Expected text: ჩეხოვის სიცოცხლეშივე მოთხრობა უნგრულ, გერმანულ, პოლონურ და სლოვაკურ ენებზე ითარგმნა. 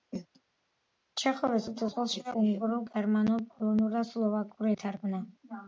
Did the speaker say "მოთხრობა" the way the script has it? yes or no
no